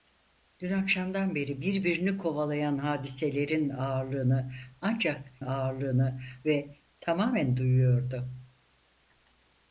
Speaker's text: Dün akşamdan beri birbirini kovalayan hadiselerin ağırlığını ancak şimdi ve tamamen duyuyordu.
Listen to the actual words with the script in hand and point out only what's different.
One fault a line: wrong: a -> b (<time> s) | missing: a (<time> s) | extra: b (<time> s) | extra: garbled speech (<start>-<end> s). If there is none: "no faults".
wrong: şimdi -> ağırlığını (5.4 s)